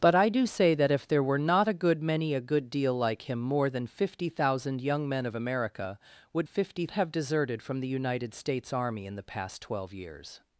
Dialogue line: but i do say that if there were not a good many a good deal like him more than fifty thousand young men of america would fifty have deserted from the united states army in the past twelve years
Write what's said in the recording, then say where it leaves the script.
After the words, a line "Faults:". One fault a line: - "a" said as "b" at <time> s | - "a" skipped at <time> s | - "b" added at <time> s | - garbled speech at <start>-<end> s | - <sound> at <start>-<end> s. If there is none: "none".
but i do say that if there were not a good many a good deal like him more than fifty thousand young men of america would fifty have deserted from the united states army in the past twelve years
Faults:
none